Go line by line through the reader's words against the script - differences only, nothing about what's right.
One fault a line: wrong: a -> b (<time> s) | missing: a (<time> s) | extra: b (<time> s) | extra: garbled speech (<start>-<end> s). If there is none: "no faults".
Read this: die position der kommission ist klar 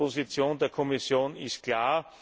no faults